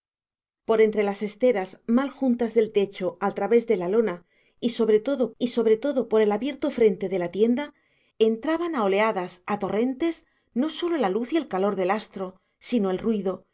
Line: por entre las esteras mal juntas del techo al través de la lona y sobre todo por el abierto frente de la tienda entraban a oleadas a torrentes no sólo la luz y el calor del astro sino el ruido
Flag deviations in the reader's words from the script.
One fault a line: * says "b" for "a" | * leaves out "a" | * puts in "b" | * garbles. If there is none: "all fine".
* puts in "y sobre todo"